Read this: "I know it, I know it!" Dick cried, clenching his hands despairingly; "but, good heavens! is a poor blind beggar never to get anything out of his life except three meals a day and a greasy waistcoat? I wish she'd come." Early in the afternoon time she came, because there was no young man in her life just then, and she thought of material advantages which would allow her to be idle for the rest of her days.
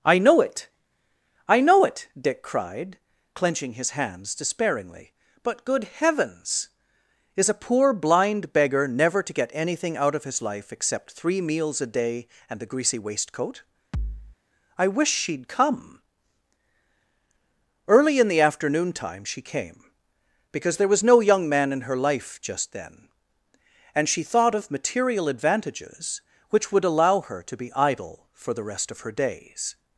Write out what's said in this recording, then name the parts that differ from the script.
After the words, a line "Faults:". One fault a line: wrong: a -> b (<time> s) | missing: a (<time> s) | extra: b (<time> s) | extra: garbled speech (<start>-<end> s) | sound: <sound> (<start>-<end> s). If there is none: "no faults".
"I know it, I know it!" Dick cried, clenching his hands despairingly; "but, good heavens! is a poor blind beggar never to get anything out of his life except three meals a day and the greasy waistcoat? I wish she'd come." Early in the afternoon time she came, because there was no young man in her life just then, and she thought of material advantages which would allow her to be idle for the rest of her days.
Faults:
wrong: a -> the (12.6 s)
sound: thud (13.9-14.4 s)